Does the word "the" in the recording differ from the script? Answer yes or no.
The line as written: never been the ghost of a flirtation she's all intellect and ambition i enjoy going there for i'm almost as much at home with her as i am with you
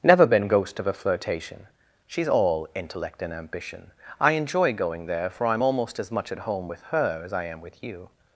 yes